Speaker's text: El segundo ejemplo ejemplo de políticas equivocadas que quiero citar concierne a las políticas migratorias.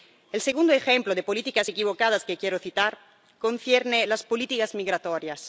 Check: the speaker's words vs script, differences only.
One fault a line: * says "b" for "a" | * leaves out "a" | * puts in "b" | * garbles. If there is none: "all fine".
* leaves out "ejemplo"